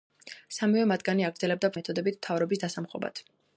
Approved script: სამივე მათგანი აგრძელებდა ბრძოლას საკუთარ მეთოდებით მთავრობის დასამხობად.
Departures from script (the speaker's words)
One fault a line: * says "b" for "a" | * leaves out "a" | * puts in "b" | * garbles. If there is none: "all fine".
* leaves out "ბრძოლას საკუთარ"